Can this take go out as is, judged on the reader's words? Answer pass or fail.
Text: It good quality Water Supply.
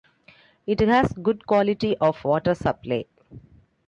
fail